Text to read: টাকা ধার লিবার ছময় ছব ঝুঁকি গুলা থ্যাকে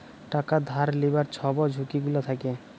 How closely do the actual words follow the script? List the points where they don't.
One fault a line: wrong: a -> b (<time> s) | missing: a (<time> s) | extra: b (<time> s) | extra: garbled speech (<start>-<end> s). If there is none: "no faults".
missing: ছময় (1.2 s)